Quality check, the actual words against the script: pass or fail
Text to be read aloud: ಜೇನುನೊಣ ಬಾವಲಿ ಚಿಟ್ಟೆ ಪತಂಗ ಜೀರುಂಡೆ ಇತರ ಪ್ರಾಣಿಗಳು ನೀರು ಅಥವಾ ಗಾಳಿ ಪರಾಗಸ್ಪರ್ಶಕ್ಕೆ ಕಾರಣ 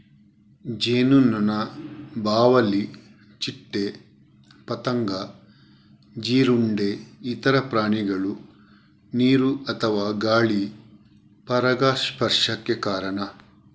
pass